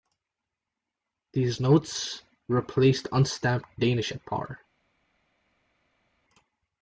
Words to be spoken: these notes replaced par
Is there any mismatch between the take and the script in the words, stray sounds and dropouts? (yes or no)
yes